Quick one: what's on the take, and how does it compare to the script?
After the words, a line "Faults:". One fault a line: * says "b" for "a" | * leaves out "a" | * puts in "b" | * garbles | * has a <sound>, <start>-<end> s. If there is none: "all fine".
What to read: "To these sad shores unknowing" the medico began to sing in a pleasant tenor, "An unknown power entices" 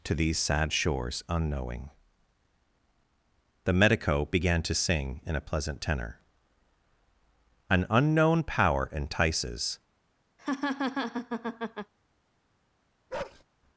"To these sad shores unknowing" the medico began to sing in a pleasant tenor, "An unknown power entices"
Faults:
* has a laugh, 10.4-11.9 s
* has a bark, 13.1-13.4 s